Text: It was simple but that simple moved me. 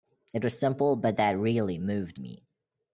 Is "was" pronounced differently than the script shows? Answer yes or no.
no